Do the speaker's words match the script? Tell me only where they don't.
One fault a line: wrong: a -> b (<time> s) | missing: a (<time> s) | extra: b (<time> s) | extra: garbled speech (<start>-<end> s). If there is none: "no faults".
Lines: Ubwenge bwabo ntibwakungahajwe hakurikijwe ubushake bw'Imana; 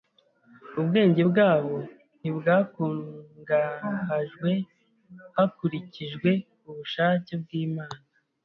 no faults